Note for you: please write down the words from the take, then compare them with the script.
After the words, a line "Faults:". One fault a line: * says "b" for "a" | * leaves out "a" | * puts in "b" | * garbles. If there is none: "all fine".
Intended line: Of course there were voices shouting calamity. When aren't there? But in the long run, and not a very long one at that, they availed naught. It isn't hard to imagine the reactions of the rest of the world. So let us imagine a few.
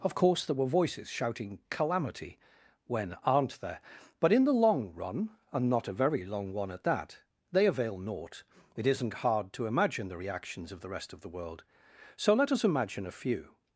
Of course there were voices shouting calamity. When aren't there? But in the long run, and not a very long one at that, they avail naught. It isn't hard to imagine the reactions of the rest of the world. So let us imagine a few.
Faults:
* says "avail" for "availed"